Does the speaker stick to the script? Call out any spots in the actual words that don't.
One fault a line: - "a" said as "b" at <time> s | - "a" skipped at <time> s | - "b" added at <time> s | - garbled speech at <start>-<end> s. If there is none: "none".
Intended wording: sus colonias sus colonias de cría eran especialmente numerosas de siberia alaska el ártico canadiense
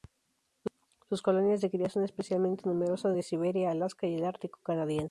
- "sus colonias" skipped at 1.6 s
- "eran" said as "son" at 1.9 s
- "y" added at 4.1 s